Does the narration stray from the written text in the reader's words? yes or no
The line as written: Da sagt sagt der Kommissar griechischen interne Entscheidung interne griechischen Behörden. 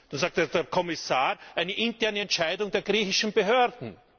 yes